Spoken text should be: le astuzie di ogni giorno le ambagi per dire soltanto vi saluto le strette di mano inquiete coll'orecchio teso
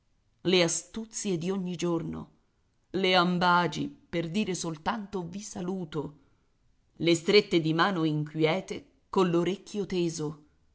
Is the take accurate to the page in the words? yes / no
yes